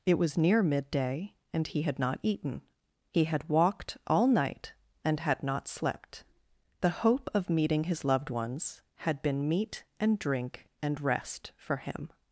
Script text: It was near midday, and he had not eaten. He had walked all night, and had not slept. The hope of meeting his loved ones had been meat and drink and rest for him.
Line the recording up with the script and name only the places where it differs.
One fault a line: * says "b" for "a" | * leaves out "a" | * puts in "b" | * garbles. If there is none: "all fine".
all fine